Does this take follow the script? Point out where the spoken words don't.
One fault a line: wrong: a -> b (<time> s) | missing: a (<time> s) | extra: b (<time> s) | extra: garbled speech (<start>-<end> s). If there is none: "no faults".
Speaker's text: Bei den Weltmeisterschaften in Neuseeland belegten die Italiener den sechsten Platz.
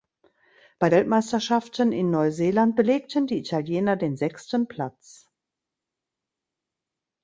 missing: den (0.9 s)